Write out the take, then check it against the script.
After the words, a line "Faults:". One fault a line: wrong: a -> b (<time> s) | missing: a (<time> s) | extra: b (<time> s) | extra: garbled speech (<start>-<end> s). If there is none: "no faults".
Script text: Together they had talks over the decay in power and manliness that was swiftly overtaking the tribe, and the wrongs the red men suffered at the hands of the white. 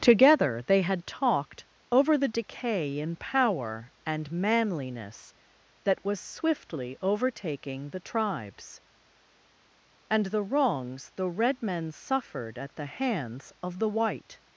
Together they had talked over the decay in power and manliness that was swiftly overtaking the tribes, and the wrongs the red men suffered at the hands of the white.
Faults:
wrong: talks -> talked (1.1 s)
wrong: tribe -> tribes (8.0 s)